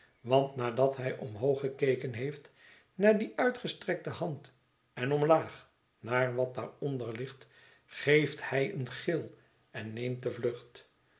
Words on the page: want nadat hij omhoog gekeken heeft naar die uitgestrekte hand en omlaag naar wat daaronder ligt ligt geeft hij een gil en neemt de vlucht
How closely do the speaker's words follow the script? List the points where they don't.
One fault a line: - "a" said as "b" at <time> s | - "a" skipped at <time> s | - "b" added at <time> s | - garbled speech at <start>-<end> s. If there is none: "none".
- "ligt" skipped at 7.5 s